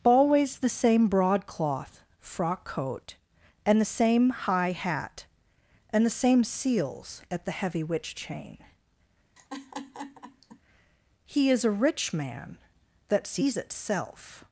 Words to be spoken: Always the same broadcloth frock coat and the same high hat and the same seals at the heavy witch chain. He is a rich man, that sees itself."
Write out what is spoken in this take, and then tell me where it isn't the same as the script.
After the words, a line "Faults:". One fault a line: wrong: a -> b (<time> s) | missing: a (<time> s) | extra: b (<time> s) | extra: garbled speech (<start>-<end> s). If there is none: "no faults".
Always the same broadcloth frock coat and the same high hat and the same seals at the heavy witch chain. He is a rich man, that sees itself."
Faults:
no faults